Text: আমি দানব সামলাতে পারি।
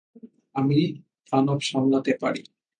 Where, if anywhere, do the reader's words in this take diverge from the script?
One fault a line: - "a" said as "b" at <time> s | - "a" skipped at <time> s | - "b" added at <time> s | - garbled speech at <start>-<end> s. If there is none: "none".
none